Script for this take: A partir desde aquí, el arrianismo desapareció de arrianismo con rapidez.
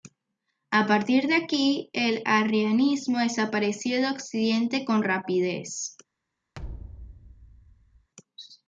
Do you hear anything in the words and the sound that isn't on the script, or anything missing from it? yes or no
yes